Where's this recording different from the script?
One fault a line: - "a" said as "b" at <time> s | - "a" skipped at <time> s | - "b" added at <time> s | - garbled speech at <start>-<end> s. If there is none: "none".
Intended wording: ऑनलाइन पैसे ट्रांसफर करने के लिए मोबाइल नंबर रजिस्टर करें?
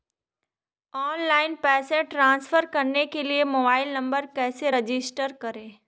- "कैसे" added at 4.3 s